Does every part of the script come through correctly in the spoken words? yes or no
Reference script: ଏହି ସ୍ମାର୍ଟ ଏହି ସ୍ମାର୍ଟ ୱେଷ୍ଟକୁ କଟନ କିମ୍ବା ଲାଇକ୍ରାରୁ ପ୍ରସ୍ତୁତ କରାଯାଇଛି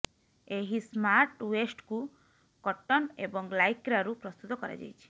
no